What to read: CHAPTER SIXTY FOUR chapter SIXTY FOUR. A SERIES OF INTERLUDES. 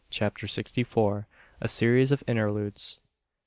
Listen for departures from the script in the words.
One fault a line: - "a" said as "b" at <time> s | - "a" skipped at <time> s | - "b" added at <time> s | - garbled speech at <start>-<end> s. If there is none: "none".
- "chapter SIXTY FOUR" skipped at 1.3 s